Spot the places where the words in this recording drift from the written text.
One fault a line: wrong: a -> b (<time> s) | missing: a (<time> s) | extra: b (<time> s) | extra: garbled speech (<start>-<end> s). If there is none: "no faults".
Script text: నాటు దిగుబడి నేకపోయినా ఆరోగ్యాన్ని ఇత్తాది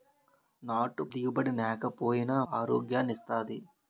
no faults